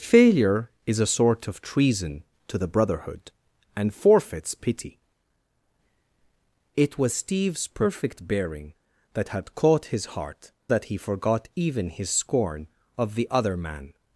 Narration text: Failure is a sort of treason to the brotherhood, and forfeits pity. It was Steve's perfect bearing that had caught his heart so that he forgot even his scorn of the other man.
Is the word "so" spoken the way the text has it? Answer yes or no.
no